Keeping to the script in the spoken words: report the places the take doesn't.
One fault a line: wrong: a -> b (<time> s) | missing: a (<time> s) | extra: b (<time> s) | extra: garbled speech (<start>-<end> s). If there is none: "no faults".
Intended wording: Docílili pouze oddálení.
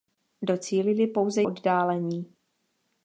no faults